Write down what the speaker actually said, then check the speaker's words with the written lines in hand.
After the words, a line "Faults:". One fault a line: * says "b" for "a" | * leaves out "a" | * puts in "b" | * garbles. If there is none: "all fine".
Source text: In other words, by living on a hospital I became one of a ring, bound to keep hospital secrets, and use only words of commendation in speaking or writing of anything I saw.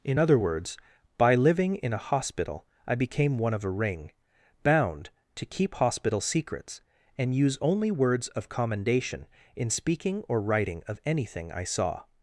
In other words, by living in a hospital I became one of a ring, bound to keep hospital secrets, and use only words of commendation in speaking or writing of anything I saw.
Faults:
* says "in" for "on"